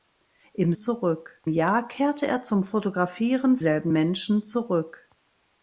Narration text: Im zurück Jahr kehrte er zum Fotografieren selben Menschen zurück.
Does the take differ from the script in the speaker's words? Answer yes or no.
no